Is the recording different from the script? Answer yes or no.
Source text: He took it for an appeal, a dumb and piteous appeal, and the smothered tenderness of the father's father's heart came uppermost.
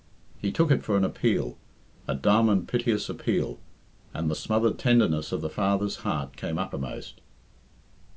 yes